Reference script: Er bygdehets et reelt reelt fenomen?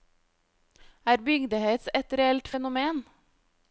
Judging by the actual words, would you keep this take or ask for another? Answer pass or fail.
fail